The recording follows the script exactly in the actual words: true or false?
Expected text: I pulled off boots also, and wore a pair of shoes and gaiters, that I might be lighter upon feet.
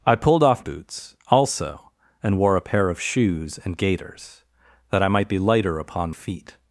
true